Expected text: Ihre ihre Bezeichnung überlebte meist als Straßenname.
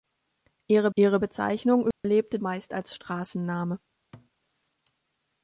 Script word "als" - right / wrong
right